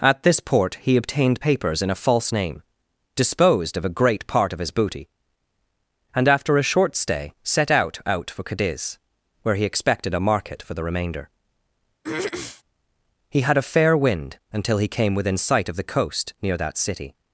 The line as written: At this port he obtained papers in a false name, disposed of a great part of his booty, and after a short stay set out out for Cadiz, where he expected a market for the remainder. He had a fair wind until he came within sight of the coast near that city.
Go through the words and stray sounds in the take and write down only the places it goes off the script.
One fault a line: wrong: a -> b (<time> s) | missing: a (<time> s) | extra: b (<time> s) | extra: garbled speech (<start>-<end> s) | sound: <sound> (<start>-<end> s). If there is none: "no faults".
sound: throat clearing (12.0-12.6 s)